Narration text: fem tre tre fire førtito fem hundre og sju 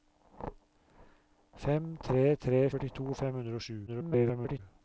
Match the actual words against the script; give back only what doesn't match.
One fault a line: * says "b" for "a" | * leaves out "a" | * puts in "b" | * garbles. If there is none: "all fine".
* leaves out "fire"
* garbles